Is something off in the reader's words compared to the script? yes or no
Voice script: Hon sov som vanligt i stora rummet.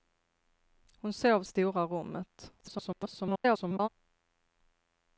yes